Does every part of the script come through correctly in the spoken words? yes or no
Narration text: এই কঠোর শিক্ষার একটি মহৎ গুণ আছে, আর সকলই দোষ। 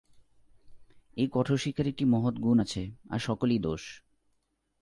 yes